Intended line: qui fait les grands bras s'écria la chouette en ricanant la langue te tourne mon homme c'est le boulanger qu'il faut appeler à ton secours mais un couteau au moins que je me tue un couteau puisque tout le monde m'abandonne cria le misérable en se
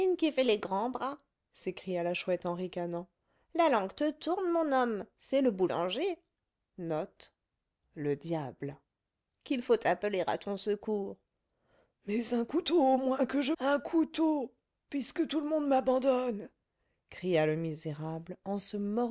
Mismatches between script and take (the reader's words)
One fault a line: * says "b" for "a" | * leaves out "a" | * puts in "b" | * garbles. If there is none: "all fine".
* leaves out "me tue"